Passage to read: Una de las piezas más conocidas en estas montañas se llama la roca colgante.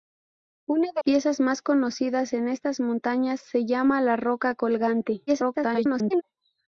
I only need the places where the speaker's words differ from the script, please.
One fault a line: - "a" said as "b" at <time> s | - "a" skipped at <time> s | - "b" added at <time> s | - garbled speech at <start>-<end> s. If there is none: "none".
- "las" skipped at 1.0 s
- garbled speech at 5.3-6.2 s